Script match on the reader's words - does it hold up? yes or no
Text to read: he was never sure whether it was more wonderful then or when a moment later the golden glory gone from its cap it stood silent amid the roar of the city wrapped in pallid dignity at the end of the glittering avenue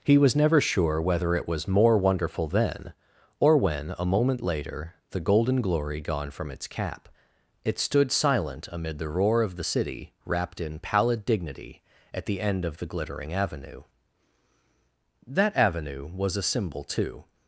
no